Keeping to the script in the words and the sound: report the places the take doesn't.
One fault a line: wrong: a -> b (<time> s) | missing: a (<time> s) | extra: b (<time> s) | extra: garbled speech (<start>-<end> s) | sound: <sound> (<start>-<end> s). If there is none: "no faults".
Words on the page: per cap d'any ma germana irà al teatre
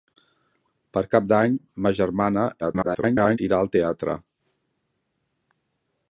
extra: garbled speech (2.6-3.4 s)